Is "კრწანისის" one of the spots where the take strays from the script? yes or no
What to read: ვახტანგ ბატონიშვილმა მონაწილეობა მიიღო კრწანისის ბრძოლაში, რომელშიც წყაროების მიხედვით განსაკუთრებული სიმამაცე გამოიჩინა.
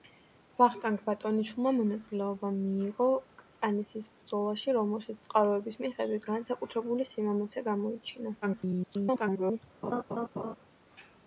no